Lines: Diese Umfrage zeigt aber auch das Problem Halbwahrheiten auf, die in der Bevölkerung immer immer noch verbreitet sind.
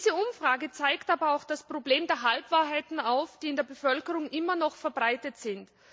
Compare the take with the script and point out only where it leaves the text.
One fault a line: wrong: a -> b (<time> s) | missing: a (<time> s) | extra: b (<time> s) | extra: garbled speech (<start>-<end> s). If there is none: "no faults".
extra: der (2.1 s)
missing: immer (4.6 s)